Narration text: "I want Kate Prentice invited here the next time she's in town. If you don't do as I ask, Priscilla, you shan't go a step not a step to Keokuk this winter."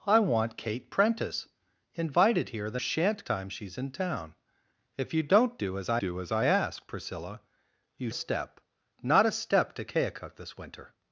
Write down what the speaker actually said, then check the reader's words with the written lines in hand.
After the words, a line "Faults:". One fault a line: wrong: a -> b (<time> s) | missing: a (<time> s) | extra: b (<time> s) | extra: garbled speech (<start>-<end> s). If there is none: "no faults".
"I want Kate Prentice invited here the shan't time she's in town. If you don't do as I do as I ask, Priscilla, you a step not a step to Keokuk this winter."
Faults:
wrong: next -> shan't (2.8 s)
extra: do as I (6.0 s)
missing: shan't go (8.1 s)